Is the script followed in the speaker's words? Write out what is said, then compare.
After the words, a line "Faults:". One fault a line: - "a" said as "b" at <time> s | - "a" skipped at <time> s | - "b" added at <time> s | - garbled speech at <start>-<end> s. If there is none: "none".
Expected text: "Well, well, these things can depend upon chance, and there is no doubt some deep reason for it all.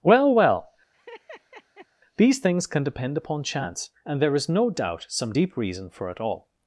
"Well, well, these things can depend upon chance, and there is no doubt some deep reason for it all.
Faults:
none